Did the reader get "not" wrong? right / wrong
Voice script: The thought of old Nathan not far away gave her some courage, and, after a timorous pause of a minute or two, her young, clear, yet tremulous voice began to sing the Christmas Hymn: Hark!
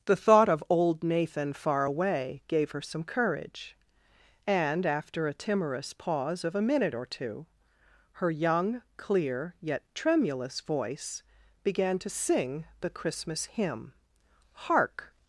wrong